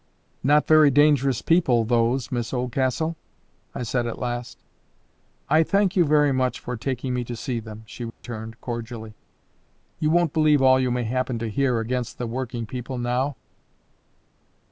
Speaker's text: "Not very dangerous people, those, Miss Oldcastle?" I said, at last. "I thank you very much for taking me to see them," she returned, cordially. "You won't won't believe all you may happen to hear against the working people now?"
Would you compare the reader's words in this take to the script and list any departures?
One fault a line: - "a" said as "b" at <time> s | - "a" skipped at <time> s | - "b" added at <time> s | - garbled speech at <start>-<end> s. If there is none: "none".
- "won't" skipped at 10.3 s